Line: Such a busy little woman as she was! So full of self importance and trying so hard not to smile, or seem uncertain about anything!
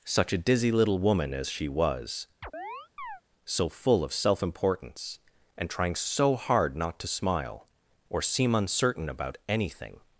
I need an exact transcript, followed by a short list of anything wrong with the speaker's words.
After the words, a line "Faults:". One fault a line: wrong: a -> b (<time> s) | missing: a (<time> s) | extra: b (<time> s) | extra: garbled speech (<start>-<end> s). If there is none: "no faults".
Such a dizzy little woman as she was! So full of self importance and trying so hard not to smile, or seem uncertain about anything!
Faults:
wrong: busy -> dizzy (0.4 s)